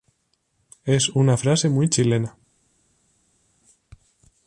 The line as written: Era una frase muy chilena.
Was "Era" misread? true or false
true